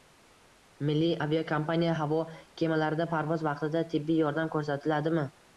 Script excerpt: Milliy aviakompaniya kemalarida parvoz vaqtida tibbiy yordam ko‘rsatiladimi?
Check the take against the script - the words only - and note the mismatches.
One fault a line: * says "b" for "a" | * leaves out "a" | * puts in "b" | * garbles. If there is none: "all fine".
* puts in "havo"